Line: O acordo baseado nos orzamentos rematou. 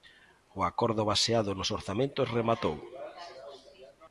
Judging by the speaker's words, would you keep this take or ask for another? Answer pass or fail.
pass